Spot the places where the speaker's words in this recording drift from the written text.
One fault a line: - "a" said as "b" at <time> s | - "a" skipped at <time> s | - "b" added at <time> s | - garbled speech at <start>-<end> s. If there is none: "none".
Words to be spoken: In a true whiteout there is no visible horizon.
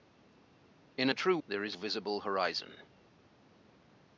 - "whiteout" skipped at 1.4 s
- "no" skipped at 1.8 s